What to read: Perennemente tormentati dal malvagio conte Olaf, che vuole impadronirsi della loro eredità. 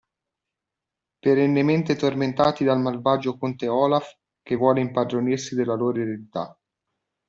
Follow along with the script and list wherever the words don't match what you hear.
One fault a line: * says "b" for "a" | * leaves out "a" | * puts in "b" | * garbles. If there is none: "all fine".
all fine